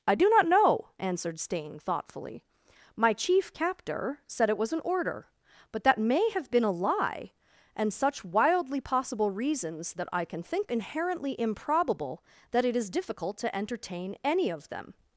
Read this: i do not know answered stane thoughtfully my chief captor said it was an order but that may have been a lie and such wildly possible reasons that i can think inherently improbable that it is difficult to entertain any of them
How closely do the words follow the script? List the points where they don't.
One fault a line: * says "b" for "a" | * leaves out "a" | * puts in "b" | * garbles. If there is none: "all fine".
all fine